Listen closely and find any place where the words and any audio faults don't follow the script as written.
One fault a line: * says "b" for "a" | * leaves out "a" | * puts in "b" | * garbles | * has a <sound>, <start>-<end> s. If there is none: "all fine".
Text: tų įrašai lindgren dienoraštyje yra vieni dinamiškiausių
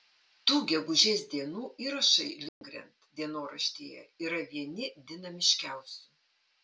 * puts in "gegužės dienų"
* has a dropout, 2.5-2.6 s